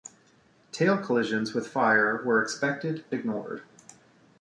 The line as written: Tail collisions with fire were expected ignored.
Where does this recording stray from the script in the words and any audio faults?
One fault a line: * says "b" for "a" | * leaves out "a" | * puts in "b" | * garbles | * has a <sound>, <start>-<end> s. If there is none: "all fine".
all fine